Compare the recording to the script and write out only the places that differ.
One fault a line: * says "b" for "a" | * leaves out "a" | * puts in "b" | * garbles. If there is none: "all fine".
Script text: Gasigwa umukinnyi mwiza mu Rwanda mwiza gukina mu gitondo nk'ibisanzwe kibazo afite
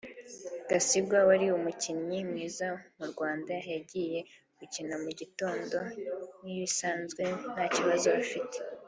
* puts in "wari"
* says "yagiye" for "mwiza"
* puts in "nta"